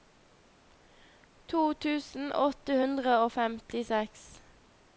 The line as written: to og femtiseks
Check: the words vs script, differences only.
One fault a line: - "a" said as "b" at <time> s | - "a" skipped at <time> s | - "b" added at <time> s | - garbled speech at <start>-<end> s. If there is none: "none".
- "tusen åtte hundre" added at 1.9 s